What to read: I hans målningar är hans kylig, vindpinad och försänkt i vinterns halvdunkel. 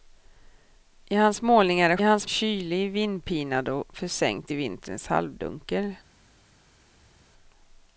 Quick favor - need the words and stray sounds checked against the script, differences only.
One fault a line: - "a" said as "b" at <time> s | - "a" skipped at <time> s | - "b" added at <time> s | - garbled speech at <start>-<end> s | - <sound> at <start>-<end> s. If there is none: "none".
none